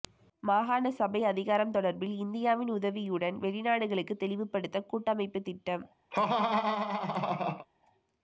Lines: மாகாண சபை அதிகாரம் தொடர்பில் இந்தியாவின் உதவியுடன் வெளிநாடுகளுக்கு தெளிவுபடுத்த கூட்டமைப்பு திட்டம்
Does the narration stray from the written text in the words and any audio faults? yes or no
yes